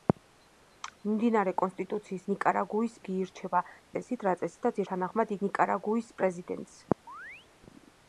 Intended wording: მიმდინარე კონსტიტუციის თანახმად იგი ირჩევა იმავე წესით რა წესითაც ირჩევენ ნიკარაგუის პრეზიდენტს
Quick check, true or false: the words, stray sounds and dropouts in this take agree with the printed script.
false